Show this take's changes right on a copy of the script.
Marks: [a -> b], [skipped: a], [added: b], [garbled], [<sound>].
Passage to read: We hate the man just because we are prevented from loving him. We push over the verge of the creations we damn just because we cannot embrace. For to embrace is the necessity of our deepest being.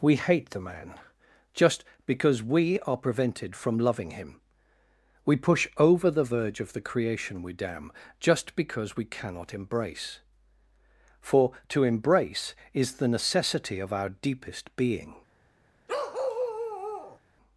We hate the man just because we are prevented from loving him. We push over the verge of the [creations -> creation] we damn just because we cannot embrace. For to embrace is the necessity of our deepest being. [bark]